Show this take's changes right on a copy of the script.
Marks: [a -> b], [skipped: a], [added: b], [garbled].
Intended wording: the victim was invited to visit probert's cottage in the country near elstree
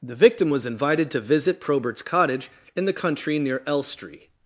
the victim was invited to visit probert's cottage in the country near elstree